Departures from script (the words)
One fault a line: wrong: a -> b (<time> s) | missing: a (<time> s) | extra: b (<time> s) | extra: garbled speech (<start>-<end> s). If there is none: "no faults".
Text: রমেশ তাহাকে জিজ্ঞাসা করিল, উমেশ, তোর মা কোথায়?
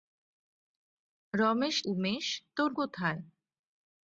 missing: তাহাকে জিজ্ঞাসা করিল (1.8 s)
missing: মা (2.7 s)